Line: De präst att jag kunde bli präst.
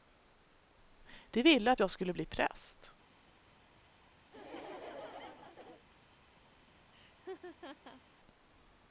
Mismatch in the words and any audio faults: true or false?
true